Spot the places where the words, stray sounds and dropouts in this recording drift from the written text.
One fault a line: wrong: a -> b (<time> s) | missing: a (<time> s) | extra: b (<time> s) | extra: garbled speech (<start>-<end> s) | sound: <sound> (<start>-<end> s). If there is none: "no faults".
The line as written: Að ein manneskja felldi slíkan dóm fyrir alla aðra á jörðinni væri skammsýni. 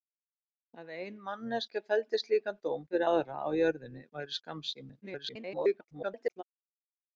missing: alla (3.1 s)
extra: garbled speech (5.0-6.4 s)